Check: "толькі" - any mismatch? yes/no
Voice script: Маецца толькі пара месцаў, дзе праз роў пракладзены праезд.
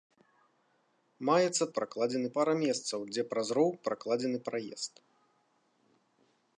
yes